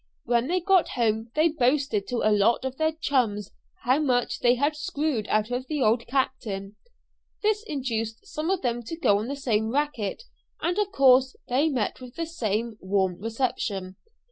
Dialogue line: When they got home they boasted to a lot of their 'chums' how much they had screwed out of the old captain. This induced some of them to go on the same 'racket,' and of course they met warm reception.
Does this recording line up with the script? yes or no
no